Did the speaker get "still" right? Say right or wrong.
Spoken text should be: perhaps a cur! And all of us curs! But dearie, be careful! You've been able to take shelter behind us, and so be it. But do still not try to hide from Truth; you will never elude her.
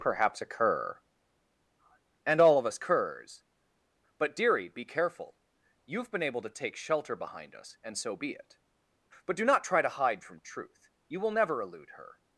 wrong